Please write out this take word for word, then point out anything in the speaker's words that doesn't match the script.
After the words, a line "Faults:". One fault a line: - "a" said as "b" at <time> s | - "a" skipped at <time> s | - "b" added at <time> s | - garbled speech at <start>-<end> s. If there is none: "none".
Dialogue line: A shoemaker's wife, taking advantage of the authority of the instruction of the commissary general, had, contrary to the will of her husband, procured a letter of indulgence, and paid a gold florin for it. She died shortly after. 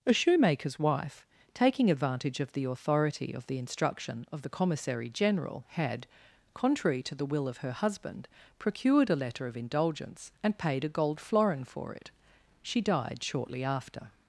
A shoemaker's wife, taking advantage of the authority of the instruction of the commissary general, had, contrary to the will of her husband, procured a letter of indulgence, and paid a gold florin for it. She died shortly after.
Faults:
none